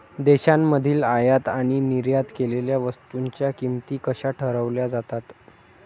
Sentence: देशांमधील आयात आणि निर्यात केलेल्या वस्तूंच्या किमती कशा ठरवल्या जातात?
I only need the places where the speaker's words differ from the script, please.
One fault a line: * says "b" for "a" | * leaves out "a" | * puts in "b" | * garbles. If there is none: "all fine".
all fine